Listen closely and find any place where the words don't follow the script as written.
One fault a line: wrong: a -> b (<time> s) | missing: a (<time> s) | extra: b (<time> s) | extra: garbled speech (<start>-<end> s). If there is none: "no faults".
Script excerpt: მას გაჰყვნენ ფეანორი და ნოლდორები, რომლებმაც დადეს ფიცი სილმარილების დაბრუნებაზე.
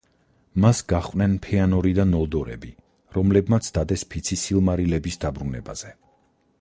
no faults